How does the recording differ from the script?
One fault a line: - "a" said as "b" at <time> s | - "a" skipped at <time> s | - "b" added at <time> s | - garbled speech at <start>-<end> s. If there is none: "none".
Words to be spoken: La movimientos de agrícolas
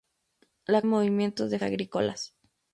none